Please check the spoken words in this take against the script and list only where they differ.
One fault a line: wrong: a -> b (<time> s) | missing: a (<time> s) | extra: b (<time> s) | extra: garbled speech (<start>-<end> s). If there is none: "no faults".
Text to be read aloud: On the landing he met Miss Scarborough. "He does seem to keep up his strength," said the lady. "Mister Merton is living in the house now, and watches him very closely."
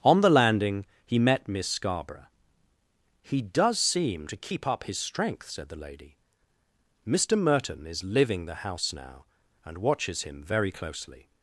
missing: in (8.4 s)